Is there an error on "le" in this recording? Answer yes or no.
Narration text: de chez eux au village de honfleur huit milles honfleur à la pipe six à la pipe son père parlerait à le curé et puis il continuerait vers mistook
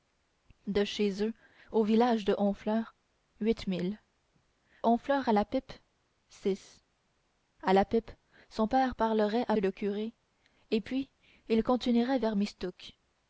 no